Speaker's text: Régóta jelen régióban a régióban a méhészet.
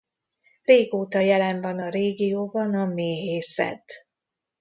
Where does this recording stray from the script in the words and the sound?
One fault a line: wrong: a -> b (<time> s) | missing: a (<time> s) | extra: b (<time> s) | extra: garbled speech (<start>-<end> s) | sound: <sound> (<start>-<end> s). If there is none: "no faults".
wrong: régióban -> van (1.6 s)